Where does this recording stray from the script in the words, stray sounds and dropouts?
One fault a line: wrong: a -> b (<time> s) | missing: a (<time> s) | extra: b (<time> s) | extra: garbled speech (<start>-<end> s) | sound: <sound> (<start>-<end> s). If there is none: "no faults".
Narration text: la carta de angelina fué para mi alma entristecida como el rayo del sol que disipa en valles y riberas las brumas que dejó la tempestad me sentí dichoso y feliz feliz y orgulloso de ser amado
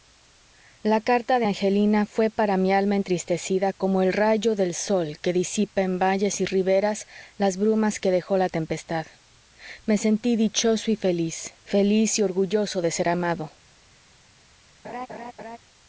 sound: laugh (14.8-15.6 s)